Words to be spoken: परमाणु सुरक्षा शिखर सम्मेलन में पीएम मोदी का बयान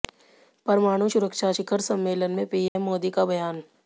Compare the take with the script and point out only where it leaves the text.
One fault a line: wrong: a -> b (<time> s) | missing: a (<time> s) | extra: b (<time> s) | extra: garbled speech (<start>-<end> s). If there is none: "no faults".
no faults